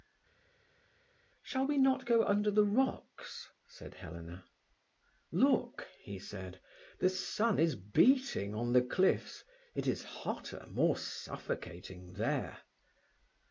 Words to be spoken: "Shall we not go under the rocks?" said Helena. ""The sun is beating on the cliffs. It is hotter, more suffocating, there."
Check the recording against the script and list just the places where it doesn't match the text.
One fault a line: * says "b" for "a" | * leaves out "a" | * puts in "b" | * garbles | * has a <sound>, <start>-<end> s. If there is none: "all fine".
* puts in "Look he said"